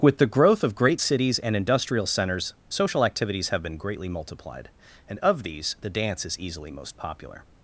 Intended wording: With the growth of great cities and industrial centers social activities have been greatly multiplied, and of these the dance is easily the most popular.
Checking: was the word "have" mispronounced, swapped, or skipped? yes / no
no